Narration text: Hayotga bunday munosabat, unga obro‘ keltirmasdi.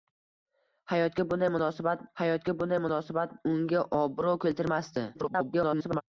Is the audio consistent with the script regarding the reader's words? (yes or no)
no